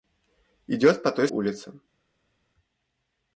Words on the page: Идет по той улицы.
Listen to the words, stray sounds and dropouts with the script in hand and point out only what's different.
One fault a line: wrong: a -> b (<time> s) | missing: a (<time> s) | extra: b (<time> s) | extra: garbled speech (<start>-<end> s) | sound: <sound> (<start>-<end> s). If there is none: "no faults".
no faults